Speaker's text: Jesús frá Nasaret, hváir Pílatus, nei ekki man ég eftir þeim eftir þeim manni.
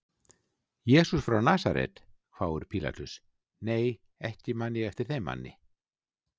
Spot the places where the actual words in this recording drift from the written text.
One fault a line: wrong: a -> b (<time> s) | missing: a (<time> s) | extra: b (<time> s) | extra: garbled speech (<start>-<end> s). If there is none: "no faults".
missing: eftir þeim (5.3 s)